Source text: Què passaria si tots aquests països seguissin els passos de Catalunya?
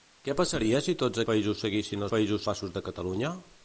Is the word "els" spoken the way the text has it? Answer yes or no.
no